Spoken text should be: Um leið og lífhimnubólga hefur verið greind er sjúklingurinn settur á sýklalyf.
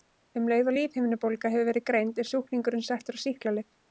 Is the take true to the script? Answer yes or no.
yes